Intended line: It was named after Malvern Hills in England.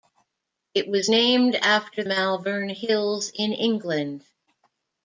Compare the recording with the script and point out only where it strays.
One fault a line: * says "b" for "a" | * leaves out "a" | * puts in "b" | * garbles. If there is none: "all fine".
all fine